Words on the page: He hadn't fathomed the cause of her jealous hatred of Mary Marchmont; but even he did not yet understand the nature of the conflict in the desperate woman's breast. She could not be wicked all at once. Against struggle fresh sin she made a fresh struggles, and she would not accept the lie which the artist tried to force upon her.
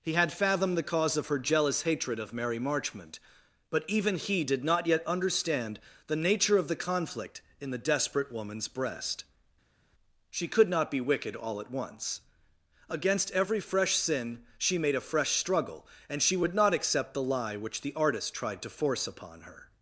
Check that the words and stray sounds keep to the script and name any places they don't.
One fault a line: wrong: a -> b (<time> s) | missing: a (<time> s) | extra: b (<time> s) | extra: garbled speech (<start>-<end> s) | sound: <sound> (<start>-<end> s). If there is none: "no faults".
wrong: hadn't -> had (0.1 s)
wrong: struggle -> every (13.3 s)
wrong: struggles -> struggle (15.3 s)